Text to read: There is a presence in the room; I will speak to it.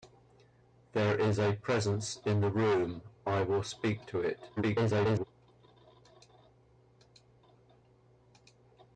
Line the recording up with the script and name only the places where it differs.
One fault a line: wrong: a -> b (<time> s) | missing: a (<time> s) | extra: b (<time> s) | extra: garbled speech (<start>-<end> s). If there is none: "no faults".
extra: garbled speech (4.6-5.2 s)